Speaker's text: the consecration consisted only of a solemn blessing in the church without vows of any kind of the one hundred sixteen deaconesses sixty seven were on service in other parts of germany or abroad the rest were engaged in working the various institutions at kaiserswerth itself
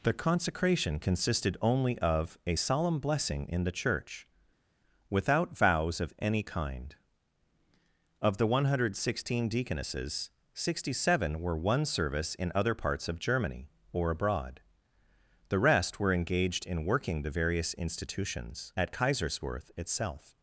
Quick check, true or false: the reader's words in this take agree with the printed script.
false